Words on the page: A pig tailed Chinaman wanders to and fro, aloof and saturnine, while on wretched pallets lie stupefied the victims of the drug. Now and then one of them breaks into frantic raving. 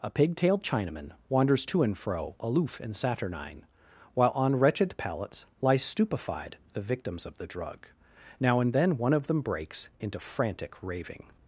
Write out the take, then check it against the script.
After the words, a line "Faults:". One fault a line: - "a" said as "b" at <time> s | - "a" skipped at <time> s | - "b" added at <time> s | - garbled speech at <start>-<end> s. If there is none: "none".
A pig tailed Chinaman wanders to and fro, aloof and saturnine, while on wretched pallets lie stupefied the victims of the drug. Now and then one of them breaks into frantic raving.
Faults:
none